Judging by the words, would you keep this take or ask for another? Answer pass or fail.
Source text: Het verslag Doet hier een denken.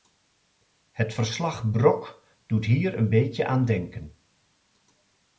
fail